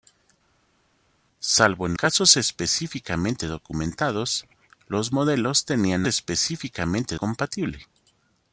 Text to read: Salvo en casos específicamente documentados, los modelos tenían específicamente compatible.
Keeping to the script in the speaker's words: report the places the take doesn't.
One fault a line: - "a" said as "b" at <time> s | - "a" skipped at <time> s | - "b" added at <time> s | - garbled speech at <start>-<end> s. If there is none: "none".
none